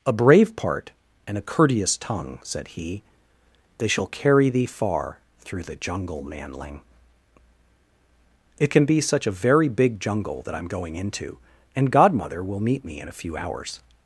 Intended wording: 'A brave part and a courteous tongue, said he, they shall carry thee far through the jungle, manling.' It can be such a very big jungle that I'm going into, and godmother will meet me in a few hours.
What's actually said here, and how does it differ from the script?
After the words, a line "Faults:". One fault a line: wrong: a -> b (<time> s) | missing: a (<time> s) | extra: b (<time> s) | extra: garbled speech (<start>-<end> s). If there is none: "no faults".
'A brave part and a courteous tongue, said he, they shall carry thee far through the jungle, manling.' It can be such a very big jungle that I'm going into, and godmother will meet me in a few hours.
Faults:
no faults